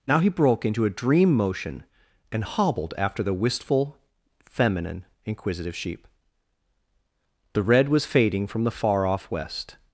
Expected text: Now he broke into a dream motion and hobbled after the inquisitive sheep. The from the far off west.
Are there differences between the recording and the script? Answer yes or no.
yes